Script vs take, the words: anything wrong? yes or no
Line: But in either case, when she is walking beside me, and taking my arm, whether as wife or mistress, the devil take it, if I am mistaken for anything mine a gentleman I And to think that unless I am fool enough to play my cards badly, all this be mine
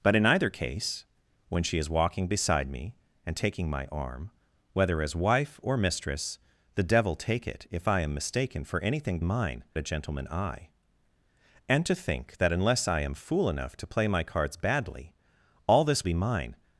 no